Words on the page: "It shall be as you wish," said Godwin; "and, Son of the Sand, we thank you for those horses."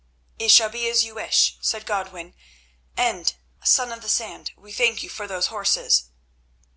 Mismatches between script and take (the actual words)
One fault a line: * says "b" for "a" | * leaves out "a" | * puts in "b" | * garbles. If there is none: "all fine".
all fine